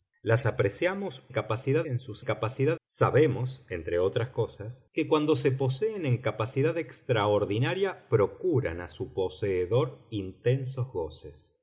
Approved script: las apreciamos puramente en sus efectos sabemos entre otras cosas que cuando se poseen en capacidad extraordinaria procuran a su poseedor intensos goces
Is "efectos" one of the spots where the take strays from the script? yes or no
yes